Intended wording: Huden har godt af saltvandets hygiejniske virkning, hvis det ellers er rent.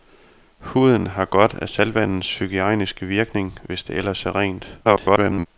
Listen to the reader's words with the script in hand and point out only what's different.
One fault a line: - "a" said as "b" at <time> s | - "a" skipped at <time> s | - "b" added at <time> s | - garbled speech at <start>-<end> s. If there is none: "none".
- garbled speech at 4.8-5.5 s